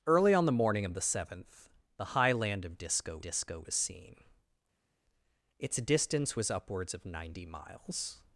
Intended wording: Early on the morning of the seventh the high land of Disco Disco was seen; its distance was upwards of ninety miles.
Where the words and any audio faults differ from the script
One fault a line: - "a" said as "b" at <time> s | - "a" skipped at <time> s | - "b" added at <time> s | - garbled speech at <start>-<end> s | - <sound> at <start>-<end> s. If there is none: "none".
none